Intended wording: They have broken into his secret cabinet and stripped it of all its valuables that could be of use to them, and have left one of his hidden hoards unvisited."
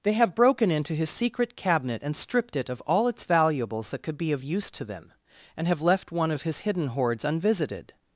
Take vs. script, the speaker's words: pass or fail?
pass